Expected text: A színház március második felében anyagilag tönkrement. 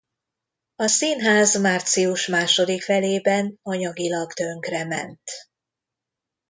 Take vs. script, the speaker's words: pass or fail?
pass